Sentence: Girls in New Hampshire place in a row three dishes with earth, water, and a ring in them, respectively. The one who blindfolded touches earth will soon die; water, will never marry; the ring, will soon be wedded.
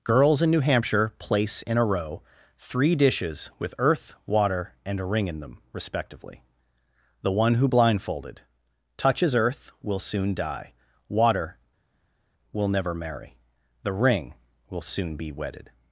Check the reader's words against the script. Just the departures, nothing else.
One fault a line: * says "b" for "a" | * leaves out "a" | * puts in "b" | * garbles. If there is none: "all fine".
all fine